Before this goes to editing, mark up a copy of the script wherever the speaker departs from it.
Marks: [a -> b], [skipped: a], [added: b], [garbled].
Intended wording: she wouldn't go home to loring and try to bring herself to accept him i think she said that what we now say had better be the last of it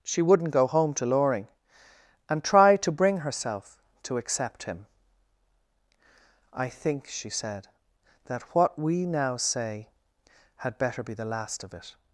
she wouldn't go home to loring and try to bring herself to accept him i think she said that what we now say had better be the last of it